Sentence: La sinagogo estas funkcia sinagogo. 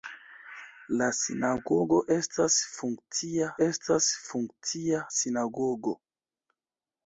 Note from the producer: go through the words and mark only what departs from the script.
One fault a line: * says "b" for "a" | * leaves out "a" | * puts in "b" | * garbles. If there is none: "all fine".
* puts in "estas funkcia"